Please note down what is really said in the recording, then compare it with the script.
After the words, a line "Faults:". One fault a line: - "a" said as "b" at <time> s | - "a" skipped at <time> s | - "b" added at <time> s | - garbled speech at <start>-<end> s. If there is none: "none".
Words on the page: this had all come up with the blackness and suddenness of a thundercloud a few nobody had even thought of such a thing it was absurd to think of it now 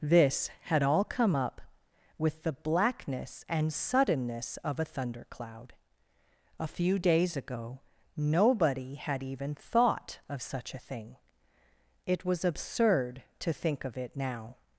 this had all come up with the blackness and suddenness of a thundercloud a few days ago nobody had even thought of such a thing it was absurd to think of it now
Faults:
- "days ago" added at 7.0 s